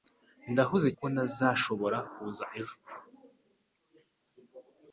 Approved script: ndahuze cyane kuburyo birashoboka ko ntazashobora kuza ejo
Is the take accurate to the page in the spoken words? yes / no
no